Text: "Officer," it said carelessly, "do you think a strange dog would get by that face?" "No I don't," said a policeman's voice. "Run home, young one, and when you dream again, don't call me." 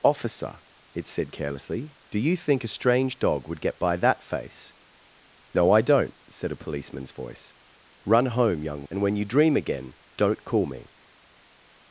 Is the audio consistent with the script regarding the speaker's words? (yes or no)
no